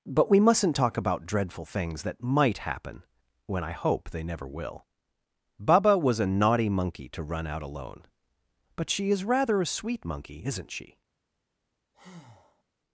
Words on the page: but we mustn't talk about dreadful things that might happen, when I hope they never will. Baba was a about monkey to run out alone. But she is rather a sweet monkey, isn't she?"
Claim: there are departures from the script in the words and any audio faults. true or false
true